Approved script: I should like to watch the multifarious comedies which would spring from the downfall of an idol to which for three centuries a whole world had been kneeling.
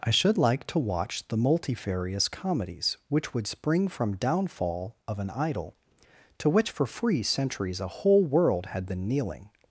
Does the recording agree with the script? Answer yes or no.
no